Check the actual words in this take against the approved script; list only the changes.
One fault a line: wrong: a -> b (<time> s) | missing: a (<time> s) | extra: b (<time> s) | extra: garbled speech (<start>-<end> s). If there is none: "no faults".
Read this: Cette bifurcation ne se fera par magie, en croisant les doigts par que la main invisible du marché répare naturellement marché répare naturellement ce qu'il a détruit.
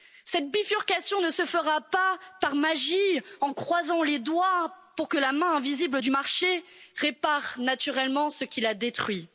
extra: pas (1.8 s)
wrong: par -> pour (4.9 s)
missing: marché répare naturellement (8.3 s)